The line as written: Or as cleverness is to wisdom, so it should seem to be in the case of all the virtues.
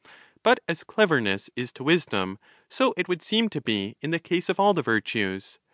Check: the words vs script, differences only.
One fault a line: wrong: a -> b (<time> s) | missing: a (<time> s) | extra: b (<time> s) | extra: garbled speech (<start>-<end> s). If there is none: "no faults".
wrong: Or -> But (0.4 s)
wrong: should -> would (3.1 s)